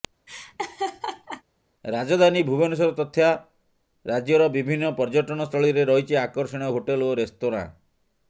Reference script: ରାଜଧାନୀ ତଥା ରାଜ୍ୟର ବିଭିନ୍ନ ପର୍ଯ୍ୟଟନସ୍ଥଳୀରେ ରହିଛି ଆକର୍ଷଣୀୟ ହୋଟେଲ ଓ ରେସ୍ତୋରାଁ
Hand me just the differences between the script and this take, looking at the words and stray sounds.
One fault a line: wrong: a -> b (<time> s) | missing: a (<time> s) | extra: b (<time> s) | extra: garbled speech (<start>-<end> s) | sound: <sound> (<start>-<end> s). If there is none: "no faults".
sound: laugh (0.3-1.4 s)
extra: ଭୁବନେଶ୍ୱର (2.4 s)